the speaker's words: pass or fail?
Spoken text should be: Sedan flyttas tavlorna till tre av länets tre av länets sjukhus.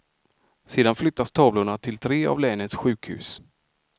fail